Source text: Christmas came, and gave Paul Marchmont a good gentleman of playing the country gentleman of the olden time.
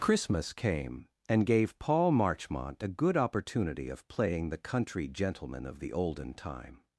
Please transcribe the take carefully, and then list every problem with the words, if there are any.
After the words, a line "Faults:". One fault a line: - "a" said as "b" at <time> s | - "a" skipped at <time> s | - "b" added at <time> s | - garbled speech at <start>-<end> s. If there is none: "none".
Christmas came, and gave Paul Marchmont a good opportunity of playing the country gentleman of the olden time.
Faults:
- "gentleman" said as "opportunity" at 3.2 s